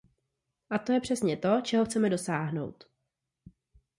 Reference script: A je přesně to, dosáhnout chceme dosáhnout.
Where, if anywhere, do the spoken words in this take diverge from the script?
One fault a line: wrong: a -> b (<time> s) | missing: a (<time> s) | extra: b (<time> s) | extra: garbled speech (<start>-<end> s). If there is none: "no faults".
extra: to (0.8 s)
wrong: dosáhnout -> čeho (1.6 s)